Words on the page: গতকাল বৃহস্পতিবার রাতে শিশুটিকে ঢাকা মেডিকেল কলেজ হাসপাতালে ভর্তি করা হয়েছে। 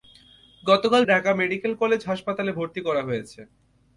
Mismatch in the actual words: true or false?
true